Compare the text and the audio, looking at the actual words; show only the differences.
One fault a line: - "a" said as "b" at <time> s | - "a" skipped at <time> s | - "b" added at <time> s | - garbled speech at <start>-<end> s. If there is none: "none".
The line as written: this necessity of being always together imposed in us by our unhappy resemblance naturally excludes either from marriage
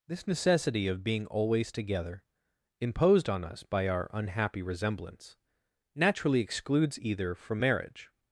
- "in" said as "on" at 3.3 s